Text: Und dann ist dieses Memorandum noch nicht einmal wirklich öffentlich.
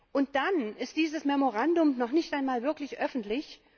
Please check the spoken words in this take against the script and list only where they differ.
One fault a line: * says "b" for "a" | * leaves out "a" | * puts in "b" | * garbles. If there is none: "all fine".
all fine